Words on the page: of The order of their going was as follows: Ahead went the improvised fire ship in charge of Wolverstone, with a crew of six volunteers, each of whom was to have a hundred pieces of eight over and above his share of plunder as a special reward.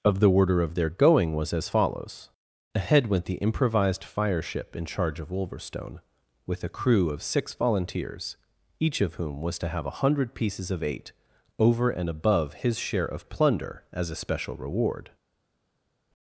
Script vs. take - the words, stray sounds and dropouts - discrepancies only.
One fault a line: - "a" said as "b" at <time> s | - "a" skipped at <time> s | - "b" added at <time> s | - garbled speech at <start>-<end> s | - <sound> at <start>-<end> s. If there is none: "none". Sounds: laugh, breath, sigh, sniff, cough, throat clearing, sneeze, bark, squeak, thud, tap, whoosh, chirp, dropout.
none